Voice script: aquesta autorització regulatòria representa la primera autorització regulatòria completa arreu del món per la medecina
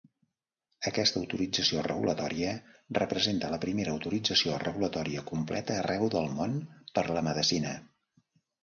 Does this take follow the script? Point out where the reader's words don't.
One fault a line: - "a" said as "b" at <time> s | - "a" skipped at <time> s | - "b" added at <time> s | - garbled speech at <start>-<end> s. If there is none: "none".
none